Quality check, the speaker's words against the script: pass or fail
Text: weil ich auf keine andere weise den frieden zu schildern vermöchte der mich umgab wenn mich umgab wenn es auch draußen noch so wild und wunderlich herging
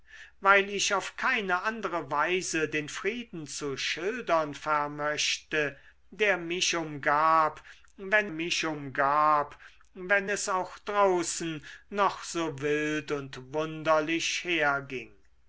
pass